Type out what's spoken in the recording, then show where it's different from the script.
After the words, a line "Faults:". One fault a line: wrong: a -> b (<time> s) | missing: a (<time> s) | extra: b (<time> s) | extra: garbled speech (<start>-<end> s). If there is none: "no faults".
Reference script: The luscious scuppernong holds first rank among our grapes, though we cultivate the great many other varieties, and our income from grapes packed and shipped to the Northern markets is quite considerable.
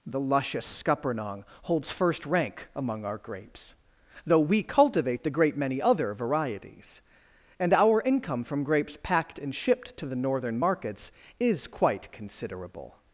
The luscious scuppernong holds first rank among our grapes, though we cultivate the great many other varieties, and our income from grapes packed and shipped to the Northern markets is quite considerable.
Faults:
no faults